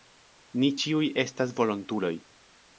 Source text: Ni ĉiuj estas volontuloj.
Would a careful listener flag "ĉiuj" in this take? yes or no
no